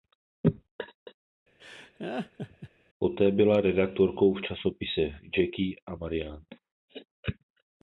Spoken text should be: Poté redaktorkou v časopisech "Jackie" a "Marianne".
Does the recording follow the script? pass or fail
fail